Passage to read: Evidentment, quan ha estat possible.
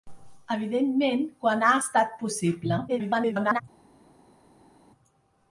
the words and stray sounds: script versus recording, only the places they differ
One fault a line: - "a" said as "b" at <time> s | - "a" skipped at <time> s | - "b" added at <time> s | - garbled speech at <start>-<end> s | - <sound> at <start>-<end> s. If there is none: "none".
- garbled speech at 2.9-3.6 s